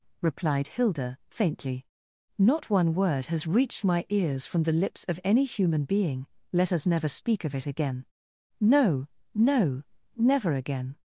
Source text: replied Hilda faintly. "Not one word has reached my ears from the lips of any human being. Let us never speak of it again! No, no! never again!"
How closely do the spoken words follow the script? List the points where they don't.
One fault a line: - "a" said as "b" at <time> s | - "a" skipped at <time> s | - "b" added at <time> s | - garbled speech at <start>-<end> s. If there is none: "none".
none